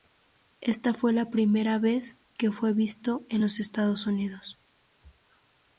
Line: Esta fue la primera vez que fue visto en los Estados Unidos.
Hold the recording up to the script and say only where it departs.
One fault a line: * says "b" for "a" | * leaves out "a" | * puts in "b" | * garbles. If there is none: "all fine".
all fine